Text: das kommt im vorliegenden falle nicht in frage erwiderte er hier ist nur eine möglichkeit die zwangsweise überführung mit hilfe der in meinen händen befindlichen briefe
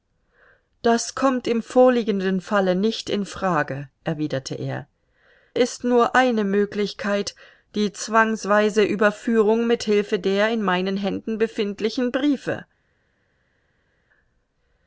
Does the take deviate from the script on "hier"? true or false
true